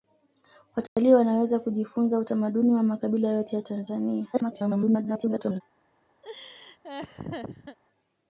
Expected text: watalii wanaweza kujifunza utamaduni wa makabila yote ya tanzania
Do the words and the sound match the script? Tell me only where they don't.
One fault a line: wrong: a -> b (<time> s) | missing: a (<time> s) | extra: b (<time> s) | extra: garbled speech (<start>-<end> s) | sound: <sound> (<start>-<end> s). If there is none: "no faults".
sound: dropout (0.9-1.0 s)
extra: garbled speech (4.3-5.6 s)
sound: laugh (6.2-7.8 s)